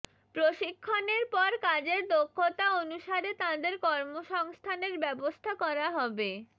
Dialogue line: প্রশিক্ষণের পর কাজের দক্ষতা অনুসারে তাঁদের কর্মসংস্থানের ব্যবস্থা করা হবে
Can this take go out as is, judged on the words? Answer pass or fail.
pass